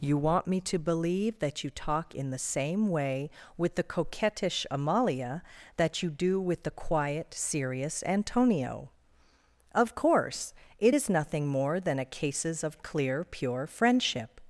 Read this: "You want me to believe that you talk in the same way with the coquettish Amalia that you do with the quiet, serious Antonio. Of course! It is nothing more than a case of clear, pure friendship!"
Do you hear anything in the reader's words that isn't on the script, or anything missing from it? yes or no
yes